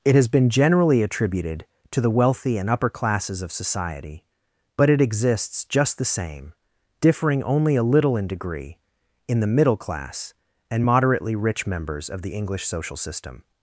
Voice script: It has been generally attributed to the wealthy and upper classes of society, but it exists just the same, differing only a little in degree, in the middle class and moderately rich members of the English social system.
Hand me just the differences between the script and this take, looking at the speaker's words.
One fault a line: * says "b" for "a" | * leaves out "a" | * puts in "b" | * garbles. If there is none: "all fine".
all fine